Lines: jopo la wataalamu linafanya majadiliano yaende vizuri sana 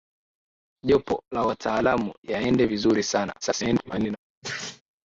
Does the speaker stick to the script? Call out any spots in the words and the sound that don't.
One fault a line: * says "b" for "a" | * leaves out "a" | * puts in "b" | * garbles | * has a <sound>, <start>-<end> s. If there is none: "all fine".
* leaves out "linafanya majadiliano"
* garbles
* has a sneeze, 4.4-4.8 s